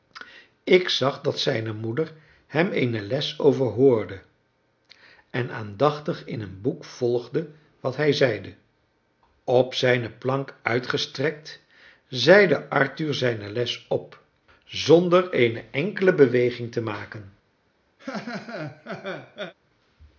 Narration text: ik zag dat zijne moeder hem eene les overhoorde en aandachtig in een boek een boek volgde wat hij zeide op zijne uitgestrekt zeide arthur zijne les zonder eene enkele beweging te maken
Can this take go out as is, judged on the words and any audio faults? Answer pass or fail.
fail